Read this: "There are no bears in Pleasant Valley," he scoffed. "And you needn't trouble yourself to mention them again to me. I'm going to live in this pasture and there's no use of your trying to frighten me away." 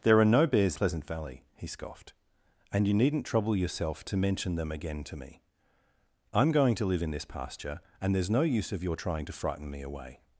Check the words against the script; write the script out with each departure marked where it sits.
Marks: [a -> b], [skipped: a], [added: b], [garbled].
"There are no bears [skipped: in] Pleasant Valley," he scoffed. "And you needn't trouble yourself to mention them again to me. I'm going to live in this pasture and there's no use of your trying to frighten me away."